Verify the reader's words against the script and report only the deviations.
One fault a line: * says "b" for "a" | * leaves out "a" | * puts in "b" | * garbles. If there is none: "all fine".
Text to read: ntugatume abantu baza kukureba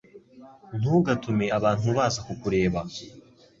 all fine